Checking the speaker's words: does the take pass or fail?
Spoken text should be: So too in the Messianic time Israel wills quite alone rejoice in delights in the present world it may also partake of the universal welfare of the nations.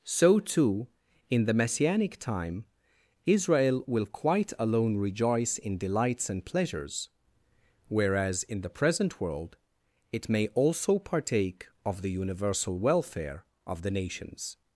fail